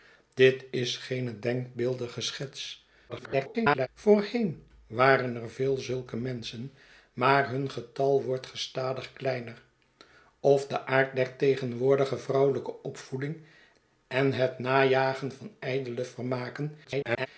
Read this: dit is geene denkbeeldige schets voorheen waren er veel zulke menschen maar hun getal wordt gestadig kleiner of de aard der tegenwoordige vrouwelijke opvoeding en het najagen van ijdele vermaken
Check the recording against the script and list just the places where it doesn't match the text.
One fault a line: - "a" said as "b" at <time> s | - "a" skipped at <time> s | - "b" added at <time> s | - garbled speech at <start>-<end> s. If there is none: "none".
- garbled speech at 3.1-3.9 s
- garbled speech at 16.8-17.3 s